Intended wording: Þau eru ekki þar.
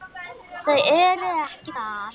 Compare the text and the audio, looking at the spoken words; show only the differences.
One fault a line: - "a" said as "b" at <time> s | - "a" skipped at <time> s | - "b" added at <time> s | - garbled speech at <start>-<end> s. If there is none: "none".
none